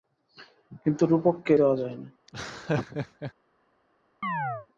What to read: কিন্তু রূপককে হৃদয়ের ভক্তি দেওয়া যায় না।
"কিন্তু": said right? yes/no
yes